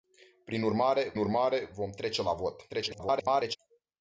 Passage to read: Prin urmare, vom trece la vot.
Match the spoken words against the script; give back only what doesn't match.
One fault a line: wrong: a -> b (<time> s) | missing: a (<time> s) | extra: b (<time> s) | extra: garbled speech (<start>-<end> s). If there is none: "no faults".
extra: urmare (1.2 s)
extra: garbled speech (2.7-3.6 s)